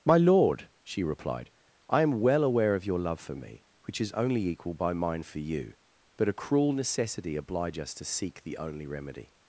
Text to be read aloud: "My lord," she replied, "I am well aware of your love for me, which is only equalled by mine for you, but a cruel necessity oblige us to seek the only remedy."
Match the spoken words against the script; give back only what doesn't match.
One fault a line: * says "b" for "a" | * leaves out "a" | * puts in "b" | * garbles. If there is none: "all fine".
all fine